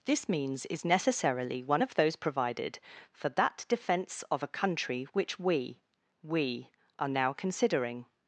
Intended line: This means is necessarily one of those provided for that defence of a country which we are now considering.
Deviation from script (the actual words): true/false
true